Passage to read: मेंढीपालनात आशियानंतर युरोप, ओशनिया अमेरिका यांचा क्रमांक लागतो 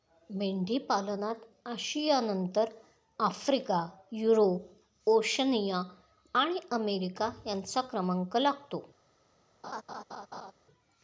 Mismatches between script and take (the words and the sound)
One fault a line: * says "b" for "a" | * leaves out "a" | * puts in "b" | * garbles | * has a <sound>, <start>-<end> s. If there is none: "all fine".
* puts in "आफ्रिका"
* puts in "आणि"
* has a laugh, 9.6-10.5 s